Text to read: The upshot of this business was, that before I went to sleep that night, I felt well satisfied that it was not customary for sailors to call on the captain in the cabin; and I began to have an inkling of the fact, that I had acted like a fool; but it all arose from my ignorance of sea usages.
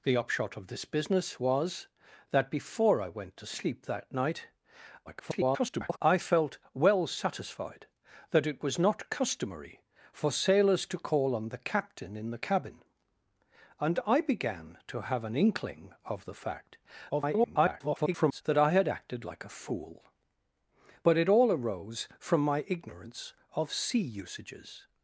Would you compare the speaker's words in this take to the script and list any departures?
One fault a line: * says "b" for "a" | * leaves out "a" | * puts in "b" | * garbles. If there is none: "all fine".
* garbles
* garbles